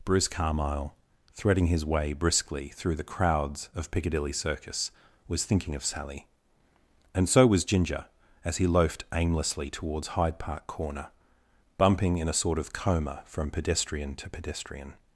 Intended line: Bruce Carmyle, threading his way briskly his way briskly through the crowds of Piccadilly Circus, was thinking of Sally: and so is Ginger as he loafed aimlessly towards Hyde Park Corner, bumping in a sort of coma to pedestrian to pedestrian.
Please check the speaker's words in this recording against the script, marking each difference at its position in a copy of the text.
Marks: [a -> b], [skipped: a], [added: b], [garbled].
Bruce Carmyle, threading his way briskly [skipped: his way briskly] through the crowds of Piccadilly Circus, was thinking of Sally: and so [is -> was] Ginger as he loafed aimlessly towards Hyde Park Corner, bumping in a sort of coma [to -> from] pedestrian to pedestrian.